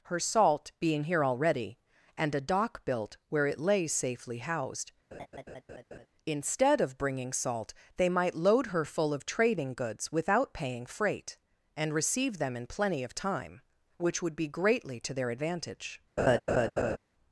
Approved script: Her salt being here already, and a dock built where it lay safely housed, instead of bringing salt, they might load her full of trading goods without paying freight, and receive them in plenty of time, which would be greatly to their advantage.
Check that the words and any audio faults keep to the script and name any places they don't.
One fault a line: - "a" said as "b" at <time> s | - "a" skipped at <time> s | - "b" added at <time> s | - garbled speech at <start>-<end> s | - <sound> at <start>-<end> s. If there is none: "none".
- laugh at 5.1-6.1 s
- laugh at 16.2-17.0 s